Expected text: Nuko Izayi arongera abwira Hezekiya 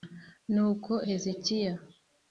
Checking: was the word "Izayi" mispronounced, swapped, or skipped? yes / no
yes